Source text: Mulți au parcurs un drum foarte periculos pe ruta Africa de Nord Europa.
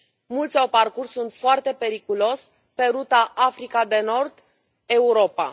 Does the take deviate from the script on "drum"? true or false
true